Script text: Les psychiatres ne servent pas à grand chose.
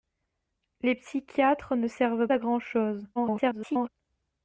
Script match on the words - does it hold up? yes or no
no